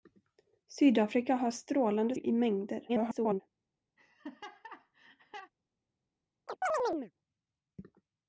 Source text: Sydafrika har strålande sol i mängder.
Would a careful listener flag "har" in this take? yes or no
no